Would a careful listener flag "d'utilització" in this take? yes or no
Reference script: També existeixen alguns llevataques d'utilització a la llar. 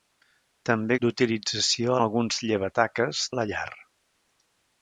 yes